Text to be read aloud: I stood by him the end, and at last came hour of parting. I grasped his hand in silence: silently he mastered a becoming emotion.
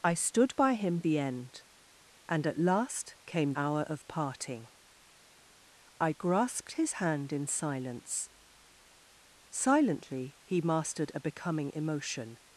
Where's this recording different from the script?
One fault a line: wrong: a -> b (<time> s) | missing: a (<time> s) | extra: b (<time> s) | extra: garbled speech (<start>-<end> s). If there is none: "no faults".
no faults